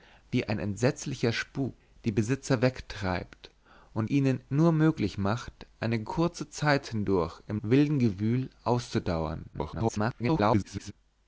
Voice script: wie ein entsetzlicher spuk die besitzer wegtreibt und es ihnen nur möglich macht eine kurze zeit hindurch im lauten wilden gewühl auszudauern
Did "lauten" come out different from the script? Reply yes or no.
yes